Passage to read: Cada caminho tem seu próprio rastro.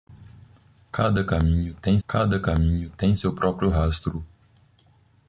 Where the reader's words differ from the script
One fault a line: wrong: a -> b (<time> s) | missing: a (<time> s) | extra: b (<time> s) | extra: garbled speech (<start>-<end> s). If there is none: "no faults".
extra: cada caminho tem (2.1 s)